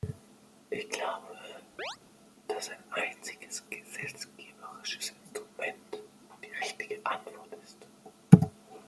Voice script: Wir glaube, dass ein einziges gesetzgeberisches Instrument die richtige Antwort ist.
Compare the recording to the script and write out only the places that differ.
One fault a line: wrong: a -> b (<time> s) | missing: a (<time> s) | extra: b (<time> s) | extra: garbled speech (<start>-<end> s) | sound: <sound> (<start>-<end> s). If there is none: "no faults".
wrong: Wir -> Ich (0.7 s)
sound: chirp (1.8-2.0 s)